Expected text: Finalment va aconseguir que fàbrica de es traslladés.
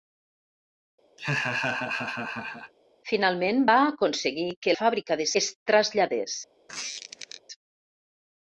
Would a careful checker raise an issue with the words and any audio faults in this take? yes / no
yes